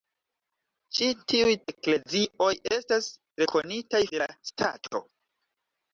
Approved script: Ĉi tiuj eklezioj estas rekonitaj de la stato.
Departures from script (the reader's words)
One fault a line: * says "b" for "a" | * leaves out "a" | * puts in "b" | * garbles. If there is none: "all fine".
all fine